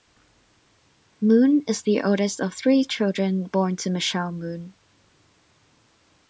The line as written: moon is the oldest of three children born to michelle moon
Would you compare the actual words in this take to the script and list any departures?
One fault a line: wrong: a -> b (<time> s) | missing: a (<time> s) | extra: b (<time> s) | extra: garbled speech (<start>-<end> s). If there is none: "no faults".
no faults